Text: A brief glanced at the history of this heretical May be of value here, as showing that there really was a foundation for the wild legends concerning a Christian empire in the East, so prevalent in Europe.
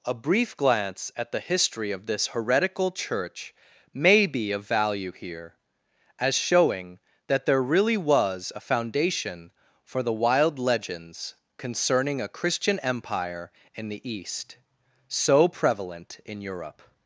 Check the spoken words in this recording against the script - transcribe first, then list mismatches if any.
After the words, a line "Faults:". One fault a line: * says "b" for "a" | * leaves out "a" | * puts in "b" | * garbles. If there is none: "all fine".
A brief glance at the history of this heretical Church may be of value here, as showing that there really was a foundation for the wild legends concerning a Christian empire in the East, so prevalent in Europe.
Faults:
* says "glance" for "glanced"
* puts in "Church"